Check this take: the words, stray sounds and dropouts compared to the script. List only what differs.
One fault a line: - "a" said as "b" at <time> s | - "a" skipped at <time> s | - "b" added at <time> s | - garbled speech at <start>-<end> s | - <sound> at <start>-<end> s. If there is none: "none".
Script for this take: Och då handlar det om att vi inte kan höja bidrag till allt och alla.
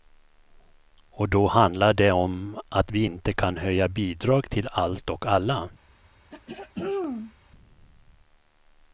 - throat clearing at 6.3-7.3 s